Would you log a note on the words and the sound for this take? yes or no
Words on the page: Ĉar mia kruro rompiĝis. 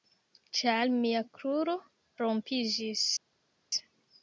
no